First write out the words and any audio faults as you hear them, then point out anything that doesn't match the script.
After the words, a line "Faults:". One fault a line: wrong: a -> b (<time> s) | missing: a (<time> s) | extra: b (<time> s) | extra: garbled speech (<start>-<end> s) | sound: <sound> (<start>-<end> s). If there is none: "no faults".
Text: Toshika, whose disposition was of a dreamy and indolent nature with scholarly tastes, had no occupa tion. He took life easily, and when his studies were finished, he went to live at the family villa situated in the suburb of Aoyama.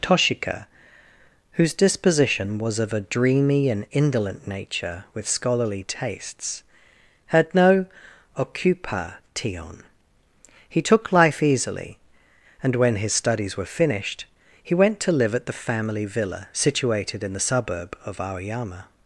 Toshika, whose disposition was of a dreamy and indolent nature with scholarly tastes, had no occupa tion. He took life easily, and when his studies were finished, he went to live at the family villa situated in the suburb of Aoyama.
Faults:
no faults